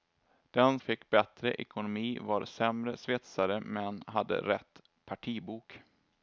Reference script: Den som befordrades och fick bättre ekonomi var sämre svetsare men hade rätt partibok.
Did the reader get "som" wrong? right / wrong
wrong